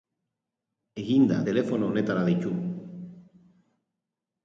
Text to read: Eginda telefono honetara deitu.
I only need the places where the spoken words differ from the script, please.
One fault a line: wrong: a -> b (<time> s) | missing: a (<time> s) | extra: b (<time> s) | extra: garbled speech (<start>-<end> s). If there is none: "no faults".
no faults